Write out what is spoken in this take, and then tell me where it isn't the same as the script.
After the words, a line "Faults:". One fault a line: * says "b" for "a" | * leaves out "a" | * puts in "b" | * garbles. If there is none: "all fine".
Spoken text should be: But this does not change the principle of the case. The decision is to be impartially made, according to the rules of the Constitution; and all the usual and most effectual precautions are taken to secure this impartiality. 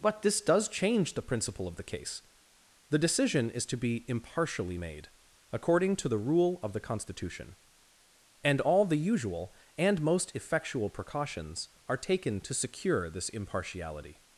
But this does change the principle of the case. The decision is to be impartially made, according to the rule of the Constitution; and all the usual and most effectual precautions are taken to secure this impartiality.
Faults:
* leaves out "not"
* says "rule" for "rules"